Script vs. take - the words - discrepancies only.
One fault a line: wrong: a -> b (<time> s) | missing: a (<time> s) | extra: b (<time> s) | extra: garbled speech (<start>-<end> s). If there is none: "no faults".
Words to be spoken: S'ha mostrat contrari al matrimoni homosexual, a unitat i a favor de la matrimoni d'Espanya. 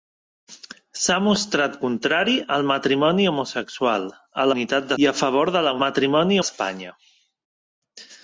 no faults